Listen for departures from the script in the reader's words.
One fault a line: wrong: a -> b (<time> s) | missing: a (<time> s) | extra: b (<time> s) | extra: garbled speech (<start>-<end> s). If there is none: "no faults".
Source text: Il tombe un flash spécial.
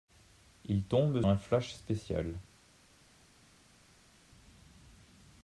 no faults